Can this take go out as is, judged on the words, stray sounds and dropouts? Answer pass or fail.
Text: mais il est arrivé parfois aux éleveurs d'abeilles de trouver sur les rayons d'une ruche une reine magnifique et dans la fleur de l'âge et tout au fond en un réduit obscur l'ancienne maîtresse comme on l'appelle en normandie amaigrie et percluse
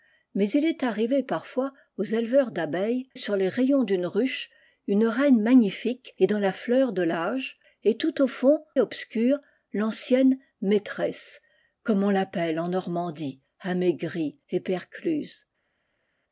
fail